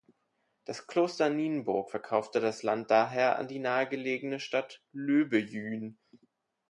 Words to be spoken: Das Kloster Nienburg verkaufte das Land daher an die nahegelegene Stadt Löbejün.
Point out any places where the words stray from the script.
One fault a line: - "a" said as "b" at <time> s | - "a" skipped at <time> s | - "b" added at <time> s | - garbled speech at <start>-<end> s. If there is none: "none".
none